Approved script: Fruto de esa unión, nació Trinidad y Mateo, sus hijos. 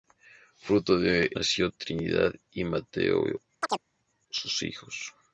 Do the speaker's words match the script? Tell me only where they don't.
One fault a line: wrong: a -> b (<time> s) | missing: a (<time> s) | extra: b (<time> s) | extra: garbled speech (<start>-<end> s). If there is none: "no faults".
missing: esa unión (1.3 s)